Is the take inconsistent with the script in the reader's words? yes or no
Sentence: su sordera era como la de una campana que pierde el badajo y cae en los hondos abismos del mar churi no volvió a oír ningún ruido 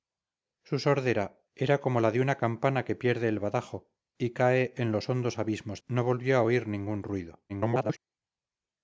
yes